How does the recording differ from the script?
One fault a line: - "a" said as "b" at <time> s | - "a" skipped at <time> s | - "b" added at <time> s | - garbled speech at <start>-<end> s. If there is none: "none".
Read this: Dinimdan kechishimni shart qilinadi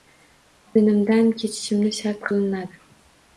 none